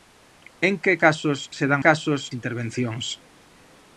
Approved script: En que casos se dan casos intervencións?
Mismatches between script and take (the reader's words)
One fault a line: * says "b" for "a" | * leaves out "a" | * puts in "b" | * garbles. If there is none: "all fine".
all fine